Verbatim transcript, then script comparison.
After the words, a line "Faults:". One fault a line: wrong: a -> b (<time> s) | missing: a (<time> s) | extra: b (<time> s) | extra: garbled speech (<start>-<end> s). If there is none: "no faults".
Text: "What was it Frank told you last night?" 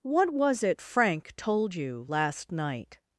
"What was it Frank told you last night?"
Faults:
no faults